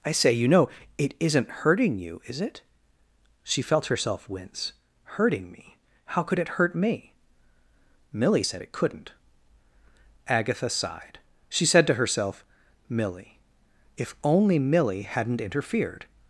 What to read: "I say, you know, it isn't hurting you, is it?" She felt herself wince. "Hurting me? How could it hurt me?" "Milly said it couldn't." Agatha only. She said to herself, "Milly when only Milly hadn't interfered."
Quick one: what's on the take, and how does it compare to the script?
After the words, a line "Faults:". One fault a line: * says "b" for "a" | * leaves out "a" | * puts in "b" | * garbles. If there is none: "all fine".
"I say, you know, it isn't hurting you, is it?" She felt herself wince. "Hurting me? How could it hurt me?" "Milly said it couldn't." Agatha sighed. She said to herself, "Milly if only Milly hadn't interfered."
Faults:
* says "sighed" for "only"
* says "if" for "when"